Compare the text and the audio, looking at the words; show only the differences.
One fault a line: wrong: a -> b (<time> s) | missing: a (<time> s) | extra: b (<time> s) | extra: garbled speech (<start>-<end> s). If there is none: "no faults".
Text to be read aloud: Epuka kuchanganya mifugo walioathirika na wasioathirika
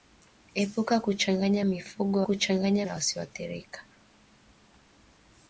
wrong: walioathirika -> kuchanganya (2.2 s)